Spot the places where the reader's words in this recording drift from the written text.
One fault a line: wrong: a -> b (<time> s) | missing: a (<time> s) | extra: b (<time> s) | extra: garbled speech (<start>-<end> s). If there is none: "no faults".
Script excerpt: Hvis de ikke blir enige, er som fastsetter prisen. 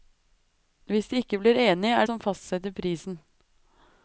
no faults